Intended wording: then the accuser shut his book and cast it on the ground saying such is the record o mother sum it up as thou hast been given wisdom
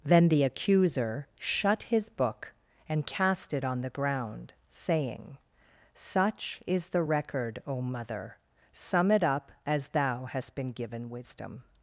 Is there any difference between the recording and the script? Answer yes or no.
no